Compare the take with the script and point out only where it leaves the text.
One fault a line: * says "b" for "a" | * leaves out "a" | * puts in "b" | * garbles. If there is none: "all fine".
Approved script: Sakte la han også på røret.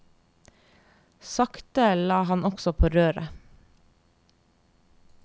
all fine